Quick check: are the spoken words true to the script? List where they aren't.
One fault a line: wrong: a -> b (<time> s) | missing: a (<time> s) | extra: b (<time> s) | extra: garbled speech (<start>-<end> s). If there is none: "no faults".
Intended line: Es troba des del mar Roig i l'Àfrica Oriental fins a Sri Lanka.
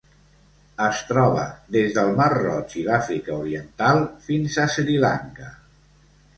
no faults